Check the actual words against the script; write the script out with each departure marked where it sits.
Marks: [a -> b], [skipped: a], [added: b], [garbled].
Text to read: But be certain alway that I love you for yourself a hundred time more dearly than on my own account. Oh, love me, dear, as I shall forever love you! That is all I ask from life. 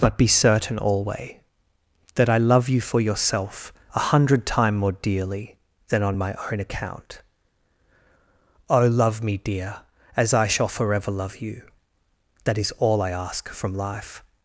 But be certain alway that I love you for yourself a hundred time more dearly than on my own account. Oh, love me, dear, as I shall forever love you! That is all I ask from life.